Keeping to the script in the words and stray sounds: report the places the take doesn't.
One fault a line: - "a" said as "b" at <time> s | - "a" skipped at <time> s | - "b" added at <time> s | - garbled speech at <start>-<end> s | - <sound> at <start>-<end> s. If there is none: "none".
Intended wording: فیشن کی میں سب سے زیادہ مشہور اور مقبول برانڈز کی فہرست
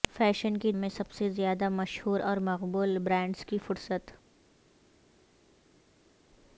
none